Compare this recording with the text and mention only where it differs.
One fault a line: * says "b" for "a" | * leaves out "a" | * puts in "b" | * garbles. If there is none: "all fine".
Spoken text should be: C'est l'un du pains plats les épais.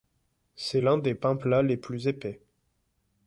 * says "des" for "du"
* puts in "plus"